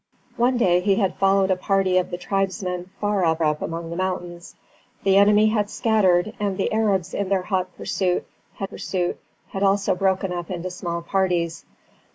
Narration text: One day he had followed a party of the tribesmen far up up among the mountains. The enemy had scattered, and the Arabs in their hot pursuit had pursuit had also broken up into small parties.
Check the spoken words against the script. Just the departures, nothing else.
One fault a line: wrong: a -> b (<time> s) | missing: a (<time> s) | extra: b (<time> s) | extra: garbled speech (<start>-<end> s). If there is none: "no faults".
no faults